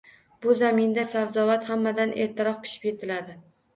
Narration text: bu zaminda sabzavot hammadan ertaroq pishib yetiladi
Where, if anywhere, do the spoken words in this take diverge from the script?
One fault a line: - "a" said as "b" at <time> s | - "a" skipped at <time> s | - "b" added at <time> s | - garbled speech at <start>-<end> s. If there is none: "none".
none